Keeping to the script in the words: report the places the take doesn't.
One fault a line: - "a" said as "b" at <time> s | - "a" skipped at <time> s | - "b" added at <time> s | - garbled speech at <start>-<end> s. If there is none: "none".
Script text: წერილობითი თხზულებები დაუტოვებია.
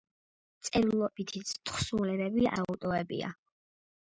none